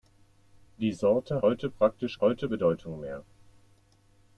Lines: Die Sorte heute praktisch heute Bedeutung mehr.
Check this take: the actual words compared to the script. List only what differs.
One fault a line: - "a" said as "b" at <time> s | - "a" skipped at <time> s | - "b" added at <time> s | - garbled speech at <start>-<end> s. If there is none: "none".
none